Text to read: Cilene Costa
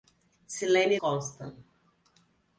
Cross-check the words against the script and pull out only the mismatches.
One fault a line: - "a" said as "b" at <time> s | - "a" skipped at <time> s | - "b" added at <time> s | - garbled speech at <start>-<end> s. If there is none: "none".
none